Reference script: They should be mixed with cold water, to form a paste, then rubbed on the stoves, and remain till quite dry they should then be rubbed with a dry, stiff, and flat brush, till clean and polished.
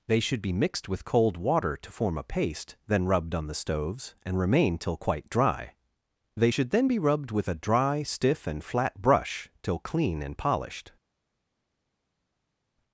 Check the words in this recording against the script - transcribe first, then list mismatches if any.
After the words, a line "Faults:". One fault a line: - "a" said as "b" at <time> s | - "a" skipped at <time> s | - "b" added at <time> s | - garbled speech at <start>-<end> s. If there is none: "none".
They should be mixed with cold water, to form a paste, then rubbed on the stoves, and remain till quite dry they should then be rubbed with a dry, stiff, and flat brush, till clean and polished.
Faults:
none